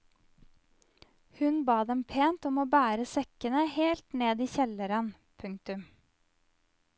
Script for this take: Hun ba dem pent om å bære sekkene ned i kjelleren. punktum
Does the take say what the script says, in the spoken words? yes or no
no